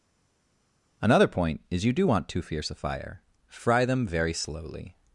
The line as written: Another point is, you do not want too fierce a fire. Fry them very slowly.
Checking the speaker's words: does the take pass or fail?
fail